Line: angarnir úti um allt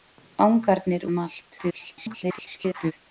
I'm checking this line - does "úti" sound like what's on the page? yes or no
no